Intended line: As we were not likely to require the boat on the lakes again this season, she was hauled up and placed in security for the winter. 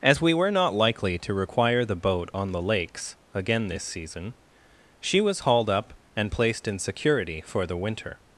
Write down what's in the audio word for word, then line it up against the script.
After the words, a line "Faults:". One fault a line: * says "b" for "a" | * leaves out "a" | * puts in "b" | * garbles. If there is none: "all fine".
As we were not likely to require the boat on the lakes again this season, she was hauled up and placed in security for the winter.
Faults:
all fine